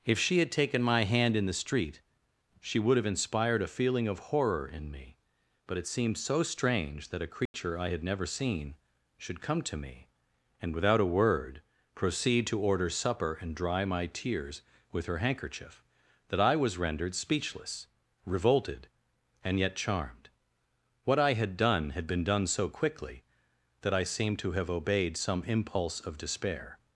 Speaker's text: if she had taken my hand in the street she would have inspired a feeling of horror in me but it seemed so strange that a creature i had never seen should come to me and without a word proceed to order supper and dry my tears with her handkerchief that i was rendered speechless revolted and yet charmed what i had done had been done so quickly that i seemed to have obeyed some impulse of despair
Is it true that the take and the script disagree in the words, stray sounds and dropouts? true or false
true